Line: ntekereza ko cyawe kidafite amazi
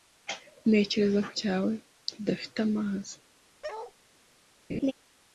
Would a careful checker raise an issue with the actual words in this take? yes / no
no